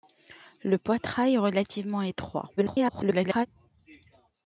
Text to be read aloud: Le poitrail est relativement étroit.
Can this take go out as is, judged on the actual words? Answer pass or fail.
fail